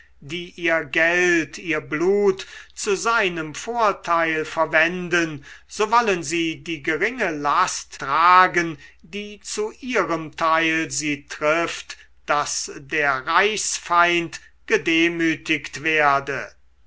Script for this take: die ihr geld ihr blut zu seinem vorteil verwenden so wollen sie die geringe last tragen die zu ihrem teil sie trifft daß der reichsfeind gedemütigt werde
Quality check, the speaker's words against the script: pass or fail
pass